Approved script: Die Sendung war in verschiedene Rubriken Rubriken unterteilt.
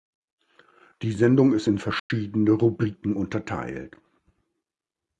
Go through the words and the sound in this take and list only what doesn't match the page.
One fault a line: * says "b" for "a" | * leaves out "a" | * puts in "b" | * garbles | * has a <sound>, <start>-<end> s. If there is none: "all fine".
* says "ist" for "war"
* has a dropout, 2.0-2.1 s
* leaves out "Rubriken"